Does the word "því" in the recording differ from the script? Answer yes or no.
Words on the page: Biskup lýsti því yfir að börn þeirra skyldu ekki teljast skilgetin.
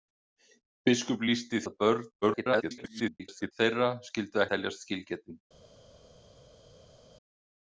yes